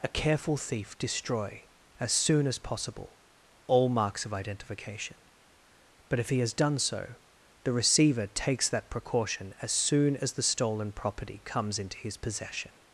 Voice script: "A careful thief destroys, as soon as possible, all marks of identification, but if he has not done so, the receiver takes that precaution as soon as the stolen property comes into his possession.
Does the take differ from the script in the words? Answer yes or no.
yes